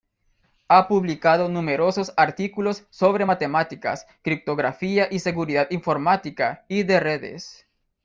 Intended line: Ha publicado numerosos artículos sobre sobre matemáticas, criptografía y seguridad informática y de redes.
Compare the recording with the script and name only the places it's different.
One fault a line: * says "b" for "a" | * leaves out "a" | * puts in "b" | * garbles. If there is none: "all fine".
* leaves out "sobre"